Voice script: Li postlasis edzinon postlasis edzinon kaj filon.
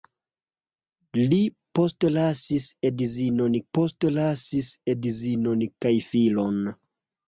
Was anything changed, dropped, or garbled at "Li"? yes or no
no